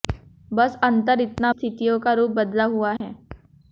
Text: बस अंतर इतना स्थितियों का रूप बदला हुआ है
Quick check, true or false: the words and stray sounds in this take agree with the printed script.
false